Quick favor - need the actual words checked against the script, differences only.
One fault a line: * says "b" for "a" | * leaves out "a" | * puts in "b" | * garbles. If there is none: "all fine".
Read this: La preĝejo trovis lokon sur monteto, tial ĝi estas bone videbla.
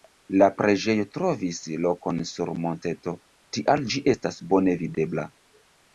all fine